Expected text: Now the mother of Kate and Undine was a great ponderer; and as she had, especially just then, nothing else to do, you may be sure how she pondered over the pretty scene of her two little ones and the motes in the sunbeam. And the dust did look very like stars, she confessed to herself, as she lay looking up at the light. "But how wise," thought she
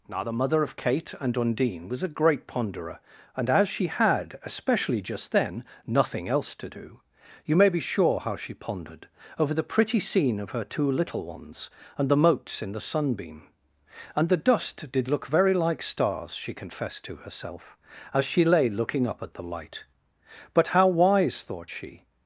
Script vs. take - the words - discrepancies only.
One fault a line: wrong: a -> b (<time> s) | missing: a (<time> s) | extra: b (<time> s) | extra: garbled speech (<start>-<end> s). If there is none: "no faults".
no faults